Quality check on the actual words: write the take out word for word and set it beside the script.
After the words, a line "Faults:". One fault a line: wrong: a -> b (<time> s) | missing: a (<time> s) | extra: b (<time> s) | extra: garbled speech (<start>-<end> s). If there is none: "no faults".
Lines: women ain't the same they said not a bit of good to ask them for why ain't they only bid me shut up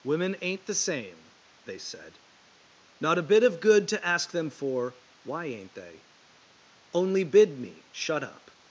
women ain't the same they said not a bit of good to ask them for why ain't they only bid me shut up
Faults:
no faults